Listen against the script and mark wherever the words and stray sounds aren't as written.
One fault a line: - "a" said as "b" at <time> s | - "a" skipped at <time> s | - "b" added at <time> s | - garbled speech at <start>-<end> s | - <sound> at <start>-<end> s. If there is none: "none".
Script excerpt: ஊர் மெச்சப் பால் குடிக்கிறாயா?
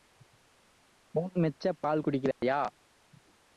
- dropout at 2.3-2.4 s